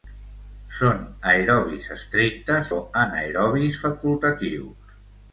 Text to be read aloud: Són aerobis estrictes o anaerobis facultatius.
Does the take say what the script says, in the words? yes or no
yes